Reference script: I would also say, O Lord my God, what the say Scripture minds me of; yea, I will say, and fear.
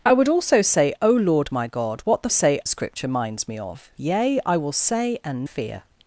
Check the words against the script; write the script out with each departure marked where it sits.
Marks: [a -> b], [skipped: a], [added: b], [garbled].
I would also say, O Lord my God, what the say Scripture minds me of; yea, I will say, and fear.